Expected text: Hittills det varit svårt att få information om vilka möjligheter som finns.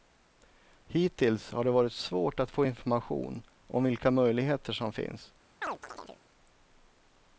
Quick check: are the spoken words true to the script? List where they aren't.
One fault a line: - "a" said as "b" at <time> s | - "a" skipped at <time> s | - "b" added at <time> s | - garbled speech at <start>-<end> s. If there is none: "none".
- "har" added at 1.5 s